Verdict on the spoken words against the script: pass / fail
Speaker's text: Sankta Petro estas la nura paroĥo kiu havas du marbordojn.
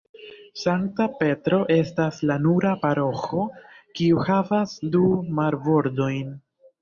pass